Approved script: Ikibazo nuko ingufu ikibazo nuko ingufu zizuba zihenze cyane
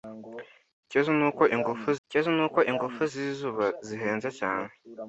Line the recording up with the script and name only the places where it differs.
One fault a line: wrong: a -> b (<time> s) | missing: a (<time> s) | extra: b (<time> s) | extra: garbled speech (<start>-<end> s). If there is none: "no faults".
no faults